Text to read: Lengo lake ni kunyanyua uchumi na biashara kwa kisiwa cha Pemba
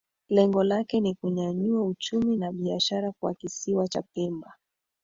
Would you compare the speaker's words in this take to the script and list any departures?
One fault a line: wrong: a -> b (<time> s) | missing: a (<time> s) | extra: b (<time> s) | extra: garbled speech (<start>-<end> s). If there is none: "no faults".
no faults